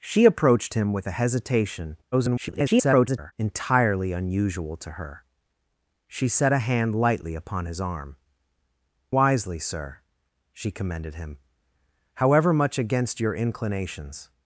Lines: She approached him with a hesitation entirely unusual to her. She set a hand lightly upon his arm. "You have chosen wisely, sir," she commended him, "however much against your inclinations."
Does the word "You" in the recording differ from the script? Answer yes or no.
yes